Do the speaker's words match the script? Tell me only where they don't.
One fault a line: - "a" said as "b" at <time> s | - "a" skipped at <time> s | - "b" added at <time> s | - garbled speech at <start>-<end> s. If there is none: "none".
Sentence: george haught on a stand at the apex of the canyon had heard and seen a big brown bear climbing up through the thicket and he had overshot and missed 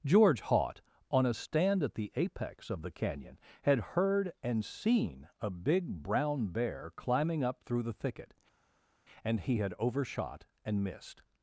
none